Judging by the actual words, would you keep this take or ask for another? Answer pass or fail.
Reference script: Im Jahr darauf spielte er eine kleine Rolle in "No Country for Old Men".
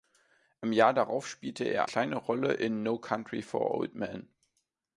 fail